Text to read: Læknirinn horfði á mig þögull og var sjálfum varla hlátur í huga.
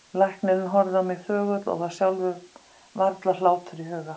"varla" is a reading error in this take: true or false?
false